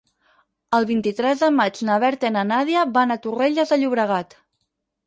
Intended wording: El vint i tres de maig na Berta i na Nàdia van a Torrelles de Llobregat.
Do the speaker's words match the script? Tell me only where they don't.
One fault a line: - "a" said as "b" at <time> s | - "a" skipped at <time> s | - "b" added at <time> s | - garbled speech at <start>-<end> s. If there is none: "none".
none